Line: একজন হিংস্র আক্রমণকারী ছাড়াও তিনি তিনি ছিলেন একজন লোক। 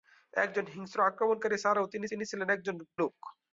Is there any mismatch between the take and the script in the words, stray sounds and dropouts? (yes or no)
no